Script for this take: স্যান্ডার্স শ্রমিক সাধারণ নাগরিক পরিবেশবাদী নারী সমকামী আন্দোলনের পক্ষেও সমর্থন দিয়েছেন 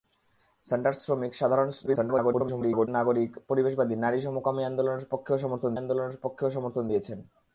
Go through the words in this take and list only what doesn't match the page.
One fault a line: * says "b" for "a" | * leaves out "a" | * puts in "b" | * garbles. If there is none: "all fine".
* garbles
* puts in "আন্দোলনের পক্ষেও সমর্থন"